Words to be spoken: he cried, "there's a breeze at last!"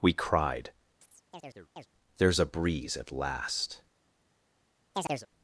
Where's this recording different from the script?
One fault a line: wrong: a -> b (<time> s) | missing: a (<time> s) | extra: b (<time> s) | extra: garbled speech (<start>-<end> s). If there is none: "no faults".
wrong: he -> we (0.0 s)